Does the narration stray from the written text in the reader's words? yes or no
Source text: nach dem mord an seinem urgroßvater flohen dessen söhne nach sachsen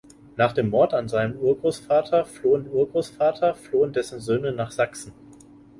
yes